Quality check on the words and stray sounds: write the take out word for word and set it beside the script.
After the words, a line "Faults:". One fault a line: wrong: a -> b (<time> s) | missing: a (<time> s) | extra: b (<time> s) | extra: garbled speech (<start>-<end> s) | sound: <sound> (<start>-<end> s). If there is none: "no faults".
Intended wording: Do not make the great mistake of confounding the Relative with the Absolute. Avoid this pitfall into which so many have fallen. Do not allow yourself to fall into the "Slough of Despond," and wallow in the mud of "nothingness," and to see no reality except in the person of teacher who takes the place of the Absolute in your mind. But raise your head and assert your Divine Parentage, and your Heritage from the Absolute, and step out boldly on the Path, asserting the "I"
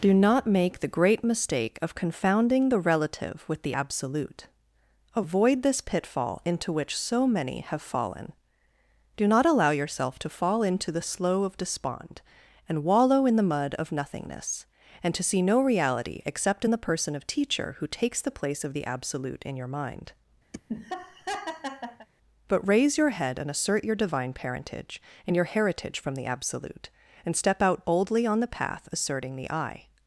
Do not make the great mistake of confounding the Relative with the Absolute. Avoid this pitfall into which so many have fallen. Do not allow yourself to fall into the "Slough of Despond," and wallow in the mud of "nothingness," and to see no reality except in the person of teacher who takes the place of the Absolute in your mind. But raise your head and assert your Divine Parentage, and your Heritage from the Absolute, and step out boldly on the Path, asserting the "I"
Faults:
sound: laugh (20.5-22.1 s)